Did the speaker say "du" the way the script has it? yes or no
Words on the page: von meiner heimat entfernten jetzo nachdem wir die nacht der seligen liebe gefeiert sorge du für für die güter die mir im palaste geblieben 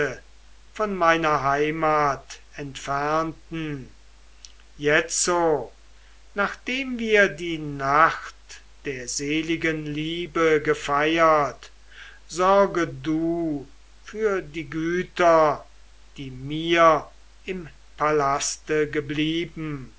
yes